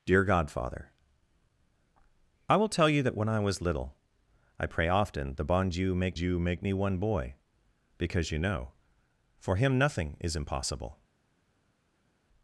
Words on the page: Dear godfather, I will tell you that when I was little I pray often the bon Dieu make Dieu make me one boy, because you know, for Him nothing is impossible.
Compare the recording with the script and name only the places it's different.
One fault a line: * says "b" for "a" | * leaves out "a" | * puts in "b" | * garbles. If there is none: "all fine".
all fine